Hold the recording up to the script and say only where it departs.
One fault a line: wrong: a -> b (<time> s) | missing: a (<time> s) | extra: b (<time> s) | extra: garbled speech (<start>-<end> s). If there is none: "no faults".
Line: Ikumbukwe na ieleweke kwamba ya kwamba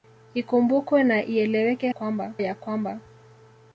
no faults